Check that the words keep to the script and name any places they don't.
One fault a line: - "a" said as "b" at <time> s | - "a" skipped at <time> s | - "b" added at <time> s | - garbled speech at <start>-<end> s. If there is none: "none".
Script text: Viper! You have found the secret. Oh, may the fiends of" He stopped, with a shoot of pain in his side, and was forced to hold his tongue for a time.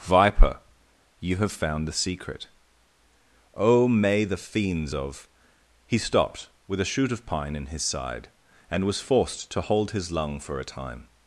- "pain" said as "pine" at 7.3 s
- "tongue" said as "lung" at 10.1 s